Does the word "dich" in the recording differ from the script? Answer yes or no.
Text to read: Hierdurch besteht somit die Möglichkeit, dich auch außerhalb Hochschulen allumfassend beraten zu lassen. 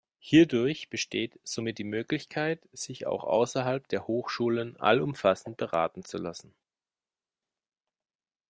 yes